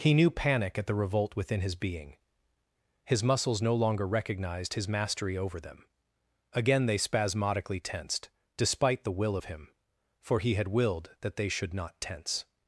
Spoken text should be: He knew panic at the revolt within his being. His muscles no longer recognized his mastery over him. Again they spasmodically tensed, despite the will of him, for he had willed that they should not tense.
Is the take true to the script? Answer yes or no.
no